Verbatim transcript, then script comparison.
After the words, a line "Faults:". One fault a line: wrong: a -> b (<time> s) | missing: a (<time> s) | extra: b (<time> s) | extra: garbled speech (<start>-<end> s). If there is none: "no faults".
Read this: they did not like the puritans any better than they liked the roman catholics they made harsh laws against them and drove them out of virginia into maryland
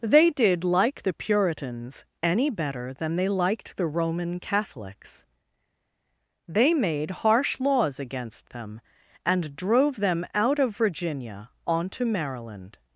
they did like the puritans any better than they liked the roman catholics they made harsh laws against them and drove them out of virginia onto maryland
Faults:
missing: not (0.6 s)
wrong: into -> onto (11.6 s)